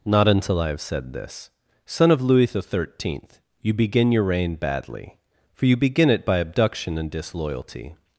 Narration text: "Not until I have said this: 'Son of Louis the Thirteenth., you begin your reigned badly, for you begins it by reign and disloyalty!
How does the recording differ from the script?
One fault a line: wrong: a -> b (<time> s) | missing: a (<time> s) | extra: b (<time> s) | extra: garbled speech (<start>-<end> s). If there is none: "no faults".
wrong: reigned -> reign (4.2 s)
wrong: begins -> begin (5.8 s)
wrong: reign -> abduction (6.4 s)